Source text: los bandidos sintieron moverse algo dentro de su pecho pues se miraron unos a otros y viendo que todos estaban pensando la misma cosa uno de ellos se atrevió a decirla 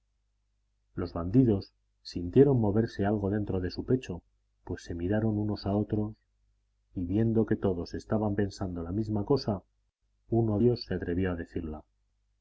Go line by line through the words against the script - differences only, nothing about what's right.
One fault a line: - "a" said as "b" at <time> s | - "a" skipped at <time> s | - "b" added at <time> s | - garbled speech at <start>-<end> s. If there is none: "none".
- "de" skipped at 10.6 s